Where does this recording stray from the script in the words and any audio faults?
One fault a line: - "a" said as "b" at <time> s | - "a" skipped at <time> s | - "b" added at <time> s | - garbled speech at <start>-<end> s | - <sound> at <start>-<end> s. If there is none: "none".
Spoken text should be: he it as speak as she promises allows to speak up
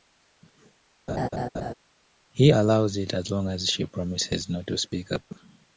- laugh at 1.1-1.7 s
- "allows" added at 2.5 s
- "speak" said as "long" at 3.3 s
- "allows" said as "not" at 4.5 s